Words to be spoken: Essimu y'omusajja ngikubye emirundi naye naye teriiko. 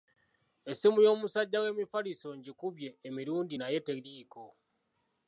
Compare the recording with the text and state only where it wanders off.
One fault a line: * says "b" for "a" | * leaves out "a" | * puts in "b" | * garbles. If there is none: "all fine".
* puts in "w'emifaliso"
* leaves out "naye"